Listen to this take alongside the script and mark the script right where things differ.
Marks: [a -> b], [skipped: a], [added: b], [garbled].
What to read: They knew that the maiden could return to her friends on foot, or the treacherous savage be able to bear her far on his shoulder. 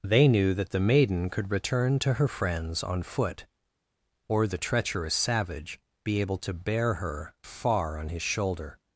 They knew that the maiden could return to her friends on foot, or the treacherous savage be able to bear her far on his shoulder.